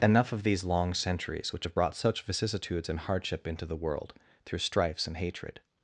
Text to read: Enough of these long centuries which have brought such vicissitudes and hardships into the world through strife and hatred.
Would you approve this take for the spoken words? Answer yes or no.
no